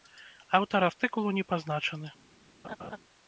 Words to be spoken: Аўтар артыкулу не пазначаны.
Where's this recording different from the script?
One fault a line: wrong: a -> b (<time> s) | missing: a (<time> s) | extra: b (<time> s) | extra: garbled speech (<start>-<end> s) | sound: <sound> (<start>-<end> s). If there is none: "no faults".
sound: laugh (2.6-3.0 s)